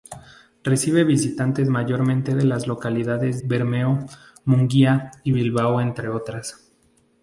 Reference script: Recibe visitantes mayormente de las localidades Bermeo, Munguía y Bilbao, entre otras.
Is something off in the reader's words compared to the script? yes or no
no